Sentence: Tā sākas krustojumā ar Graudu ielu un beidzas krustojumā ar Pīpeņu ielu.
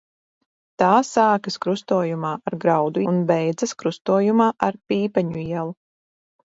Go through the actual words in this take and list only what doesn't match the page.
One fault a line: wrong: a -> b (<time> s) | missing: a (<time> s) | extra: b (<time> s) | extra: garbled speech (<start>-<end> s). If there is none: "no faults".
missing: ielu (3.0 s)